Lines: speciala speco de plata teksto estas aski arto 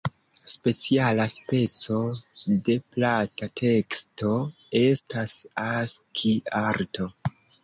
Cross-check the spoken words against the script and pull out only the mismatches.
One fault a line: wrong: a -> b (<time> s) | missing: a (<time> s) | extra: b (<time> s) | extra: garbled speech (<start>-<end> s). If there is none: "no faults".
no faults